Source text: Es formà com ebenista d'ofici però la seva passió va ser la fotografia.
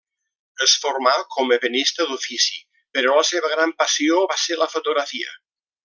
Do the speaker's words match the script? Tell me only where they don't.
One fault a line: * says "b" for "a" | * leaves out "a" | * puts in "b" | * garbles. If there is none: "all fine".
* puts in "gran"